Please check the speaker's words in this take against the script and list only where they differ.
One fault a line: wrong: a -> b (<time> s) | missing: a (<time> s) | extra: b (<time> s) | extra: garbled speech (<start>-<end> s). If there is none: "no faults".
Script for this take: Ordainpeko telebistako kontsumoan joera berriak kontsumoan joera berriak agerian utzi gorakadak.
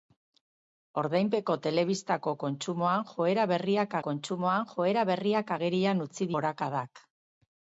no faults